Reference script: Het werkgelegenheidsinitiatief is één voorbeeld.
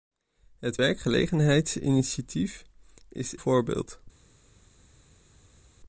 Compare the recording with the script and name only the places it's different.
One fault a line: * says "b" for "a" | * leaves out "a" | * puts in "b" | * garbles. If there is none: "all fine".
* leaves out "één"